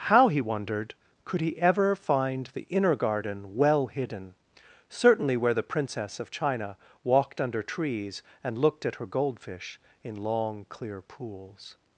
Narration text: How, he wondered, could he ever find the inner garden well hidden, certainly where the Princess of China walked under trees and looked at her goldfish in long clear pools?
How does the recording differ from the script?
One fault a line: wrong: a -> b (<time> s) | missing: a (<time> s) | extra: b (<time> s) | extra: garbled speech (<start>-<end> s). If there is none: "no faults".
no faults